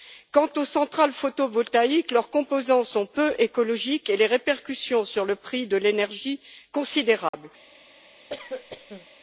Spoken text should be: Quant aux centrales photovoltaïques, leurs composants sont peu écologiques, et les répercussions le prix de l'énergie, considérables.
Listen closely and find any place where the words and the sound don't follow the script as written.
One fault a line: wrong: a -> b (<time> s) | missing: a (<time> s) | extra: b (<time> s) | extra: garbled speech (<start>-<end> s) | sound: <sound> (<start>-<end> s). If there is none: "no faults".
extra: sur (5.0 s)
sound: dropout (7.3-7.3 s)
sound: cough (8.3-9.1 s)